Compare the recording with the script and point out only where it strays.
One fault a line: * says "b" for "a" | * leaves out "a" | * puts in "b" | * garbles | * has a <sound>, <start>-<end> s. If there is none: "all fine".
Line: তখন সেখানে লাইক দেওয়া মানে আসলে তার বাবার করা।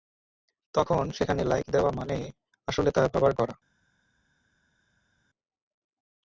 all fine